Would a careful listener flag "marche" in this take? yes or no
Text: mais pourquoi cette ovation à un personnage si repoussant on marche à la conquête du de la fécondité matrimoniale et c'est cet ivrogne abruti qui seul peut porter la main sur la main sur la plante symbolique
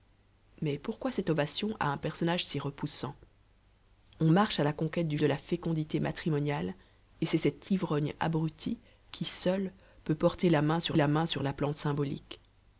no